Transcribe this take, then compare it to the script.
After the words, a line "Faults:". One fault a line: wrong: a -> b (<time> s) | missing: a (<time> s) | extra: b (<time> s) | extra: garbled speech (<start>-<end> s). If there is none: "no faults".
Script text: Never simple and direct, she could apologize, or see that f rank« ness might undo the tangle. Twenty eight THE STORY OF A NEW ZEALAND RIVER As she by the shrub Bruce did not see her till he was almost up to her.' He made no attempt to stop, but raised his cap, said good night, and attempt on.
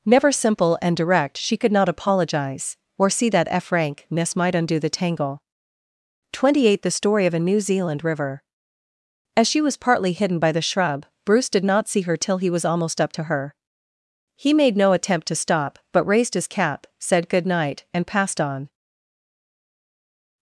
Never simple and direct, she could not apologize, or see that f rank« ness might undo the tangle. Twenty eight THE STORY OF A NEW ZEALAND RIVER As she was partly hidden by the shrub Bruce did not see her till he was almost up to her.' He made no attempt to stop, but raised his cap, said good night, and passed on.
Faults:
extra: not (1.7 s)
extra: was partly hidden (9.6 s)
wrong: attempt -> passed (18.1 s)